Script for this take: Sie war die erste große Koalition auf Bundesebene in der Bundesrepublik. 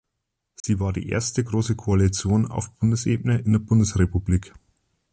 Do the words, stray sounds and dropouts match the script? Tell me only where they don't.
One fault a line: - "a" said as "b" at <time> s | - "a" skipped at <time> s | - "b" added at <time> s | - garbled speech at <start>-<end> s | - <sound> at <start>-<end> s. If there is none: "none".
- dropout at 0.6-0.6 s